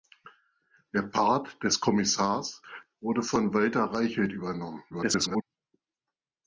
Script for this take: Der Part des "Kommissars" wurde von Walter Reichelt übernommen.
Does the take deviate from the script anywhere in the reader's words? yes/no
yes